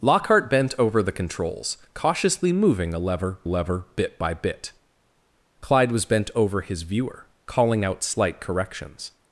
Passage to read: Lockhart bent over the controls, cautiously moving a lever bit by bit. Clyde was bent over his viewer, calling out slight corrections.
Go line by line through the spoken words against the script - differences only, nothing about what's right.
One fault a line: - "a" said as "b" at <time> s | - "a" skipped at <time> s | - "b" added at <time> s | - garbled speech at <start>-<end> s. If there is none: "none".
- "lever" added at 3.4 s